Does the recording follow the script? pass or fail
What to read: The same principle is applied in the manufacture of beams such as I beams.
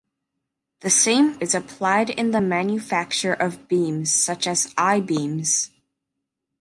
fail